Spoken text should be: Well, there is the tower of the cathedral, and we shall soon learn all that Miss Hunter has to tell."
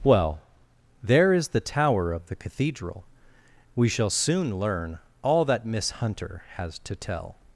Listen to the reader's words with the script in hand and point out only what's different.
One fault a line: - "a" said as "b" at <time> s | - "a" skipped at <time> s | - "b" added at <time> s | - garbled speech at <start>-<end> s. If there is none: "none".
- "and" skipped at 3.0 s